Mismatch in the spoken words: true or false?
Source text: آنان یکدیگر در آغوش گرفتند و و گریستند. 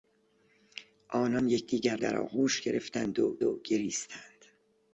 false